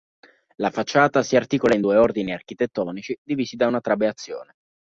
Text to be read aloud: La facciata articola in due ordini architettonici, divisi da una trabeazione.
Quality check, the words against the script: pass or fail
fail